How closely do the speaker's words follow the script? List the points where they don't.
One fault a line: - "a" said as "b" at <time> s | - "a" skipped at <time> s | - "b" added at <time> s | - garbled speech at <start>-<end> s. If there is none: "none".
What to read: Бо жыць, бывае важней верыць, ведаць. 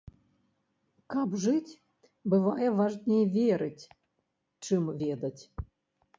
- "Бо" said as "Каб" at 1.1 s
- "чым" added at 4.7 s